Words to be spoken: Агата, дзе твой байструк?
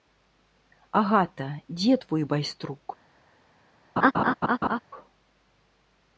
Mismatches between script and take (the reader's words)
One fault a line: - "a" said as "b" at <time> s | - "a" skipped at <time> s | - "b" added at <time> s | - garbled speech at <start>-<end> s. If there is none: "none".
none